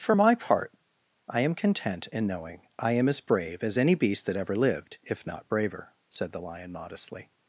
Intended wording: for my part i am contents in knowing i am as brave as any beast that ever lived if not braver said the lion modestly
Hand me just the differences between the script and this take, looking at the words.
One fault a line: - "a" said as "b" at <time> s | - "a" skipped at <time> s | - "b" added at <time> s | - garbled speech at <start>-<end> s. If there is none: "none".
- "contents" said as "content" at 1.5 s